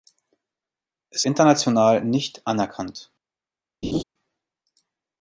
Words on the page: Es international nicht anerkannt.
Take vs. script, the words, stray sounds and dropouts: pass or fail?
fail